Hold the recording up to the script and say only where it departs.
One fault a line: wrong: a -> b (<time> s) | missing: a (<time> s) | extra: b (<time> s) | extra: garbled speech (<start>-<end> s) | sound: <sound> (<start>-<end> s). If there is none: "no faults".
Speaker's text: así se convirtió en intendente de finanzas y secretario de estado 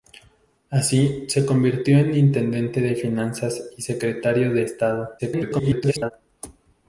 extra: garbled speech (5.2-6.1 s)